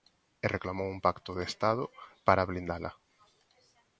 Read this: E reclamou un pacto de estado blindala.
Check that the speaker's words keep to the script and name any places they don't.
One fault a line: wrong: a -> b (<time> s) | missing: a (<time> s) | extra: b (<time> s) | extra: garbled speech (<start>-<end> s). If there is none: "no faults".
extra: para (2.3 s)